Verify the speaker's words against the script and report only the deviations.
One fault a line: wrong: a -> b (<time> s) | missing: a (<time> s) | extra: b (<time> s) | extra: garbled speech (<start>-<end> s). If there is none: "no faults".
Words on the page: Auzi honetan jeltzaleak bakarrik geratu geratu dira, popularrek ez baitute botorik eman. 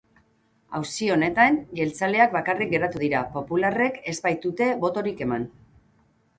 missing: geratu (3.0 s)